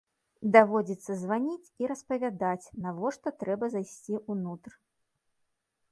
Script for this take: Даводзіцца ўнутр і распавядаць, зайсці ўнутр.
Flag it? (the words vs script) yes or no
yes